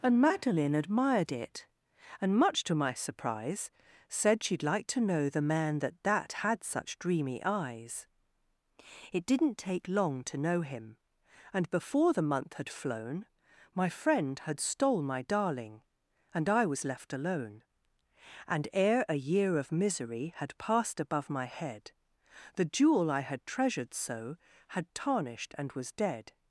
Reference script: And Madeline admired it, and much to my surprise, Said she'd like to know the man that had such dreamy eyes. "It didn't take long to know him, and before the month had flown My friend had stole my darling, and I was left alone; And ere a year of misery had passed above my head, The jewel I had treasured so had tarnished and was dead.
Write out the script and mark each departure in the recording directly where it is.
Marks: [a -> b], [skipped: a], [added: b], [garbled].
And Madeline admired it, and much to my surprise, Said she'd like to know the man that [added: that] had such dreamy eyes. "It didn't take long to know him, and before the month had flown My friend had stole my darling, and I was left alone; And ere a year of misery had passed above my head, The jewel I had treasured so had tarnished and was dead.